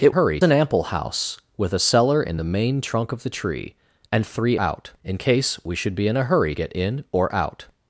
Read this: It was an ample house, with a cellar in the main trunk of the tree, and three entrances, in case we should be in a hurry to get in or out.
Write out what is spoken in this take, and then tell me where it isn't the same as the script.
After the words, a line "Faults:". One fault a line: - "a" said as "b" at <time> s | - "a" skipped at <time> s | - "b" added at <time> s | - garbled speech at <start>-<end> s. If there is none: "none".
It hurry an ample house, with a cellar in the main trunk of the tree, and three out, in case we should be in a hurry get in or out.
Faults:
- "was" said as "hurry" at 0.1 s
- "entrances" said as "out" at 4.6 s
- "to" skipped at 6.6 s